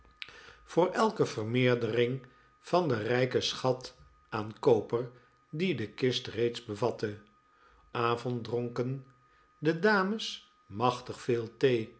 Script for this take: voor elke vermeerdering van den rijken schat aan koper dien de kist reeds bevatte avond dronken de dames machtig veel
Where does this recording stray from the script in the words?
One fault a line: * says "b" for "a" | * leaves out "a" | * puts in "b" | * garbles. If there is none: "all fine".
all fine